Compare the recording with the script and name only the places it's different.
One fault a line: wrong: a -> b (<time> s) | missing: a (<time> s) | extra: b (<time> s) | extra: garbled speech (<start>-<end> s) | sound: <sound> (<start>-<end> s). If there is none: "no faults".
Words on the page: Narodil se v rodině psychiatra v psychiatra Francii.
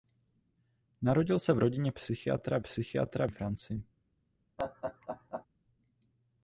sound: laugh (4.6-5.5 s)